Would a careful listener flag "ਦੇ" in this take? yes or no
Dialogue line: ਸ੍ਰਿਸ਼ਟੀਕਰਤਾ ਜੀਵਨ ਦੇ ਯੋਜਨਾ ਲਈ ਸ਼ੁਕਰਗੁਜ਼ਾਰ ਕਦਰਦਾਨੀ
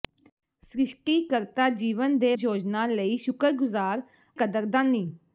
no